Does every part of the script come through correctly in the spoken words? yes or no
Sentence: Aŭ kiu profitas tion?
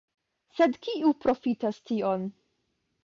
no